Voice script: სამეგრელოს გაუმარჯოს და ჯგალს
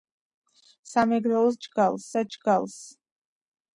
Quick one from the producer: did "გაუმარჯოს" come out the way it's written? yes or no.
no